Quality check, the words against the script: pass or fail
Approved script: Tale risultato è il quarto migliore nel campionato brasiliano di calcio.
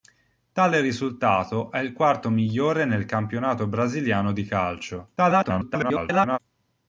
fail